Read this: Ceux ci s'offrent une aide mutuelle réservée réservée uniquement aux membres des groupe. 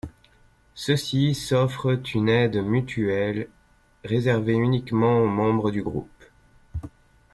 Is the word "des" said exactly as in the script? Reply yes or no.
no